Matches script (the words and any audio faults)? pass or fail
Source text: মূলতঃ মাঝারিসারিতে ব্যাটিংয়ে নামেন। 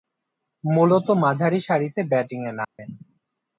fail